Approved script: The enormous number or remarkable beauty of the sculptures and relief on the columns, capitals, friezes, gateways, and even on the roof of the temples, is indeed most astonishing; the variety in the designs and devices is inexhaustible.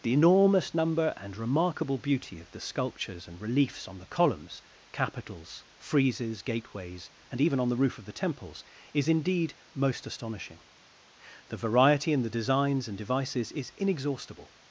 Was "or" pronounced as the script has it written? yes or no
no